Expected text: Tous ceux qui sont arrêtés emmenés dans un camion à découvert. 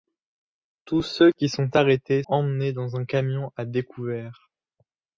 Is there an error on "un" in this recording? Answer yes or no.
no